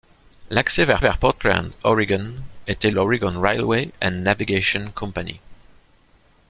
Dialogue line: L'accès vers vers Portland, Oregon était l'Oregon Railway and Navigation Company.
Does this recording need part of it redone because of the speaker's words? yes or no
no